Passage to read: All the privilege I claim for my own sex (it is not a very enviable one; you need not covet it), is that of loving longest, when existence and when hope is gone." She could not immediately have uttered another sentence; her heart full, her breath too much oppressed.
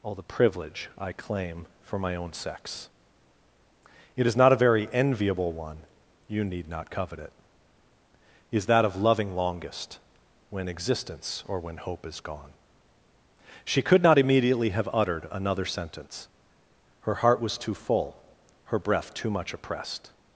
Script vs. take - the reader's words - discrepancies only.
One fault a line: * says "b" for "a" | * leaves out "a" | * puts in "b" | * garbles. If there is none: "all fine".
* says "or" for "and"
* puts in "was too"